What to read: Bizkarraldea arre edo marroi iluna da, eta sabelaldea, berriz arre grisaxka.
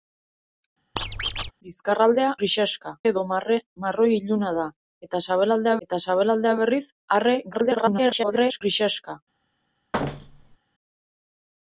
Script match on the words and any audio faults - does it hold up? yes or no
no